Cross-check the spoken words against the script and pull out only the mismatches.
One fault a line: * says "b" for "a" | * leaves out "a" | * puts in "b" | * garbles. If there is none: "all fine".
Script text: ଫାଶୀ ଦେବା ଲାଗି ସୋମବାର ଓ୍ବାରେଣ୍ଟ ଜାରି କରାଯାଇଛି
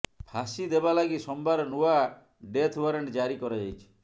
* puts in "ନୂଆ ଡେଥ୍"